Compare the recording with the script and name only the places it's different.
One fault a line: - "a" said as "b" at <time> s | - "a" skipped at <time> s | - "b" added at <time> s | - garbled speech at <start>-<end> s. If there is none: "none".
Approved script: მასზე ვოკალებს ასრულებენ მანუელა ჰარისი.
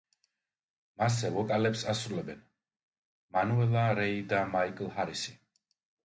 - "რეი და მაიკლ" added at 4.0 s